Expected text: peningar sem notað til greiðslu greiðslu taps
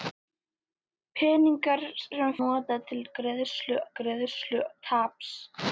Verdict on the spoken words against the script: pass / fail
pass